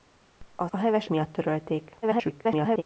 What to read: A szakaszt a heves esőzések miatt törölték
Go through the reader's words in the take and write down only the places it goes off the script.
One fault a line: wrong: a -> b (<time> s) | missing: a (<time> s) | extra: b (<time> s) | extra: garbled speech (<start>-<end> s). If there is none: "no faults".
missing: szakaszt (0.7 s)
missing: esőzések (1.1 s)
extra: garbled speech (2.0-2.8 s)